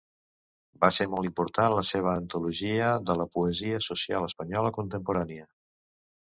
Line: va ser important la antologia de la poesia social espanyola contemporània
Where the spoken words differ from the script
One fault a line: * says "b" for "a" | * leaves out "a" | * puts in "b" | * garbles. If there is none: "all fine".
* puts in "molt"
* puts in "seva"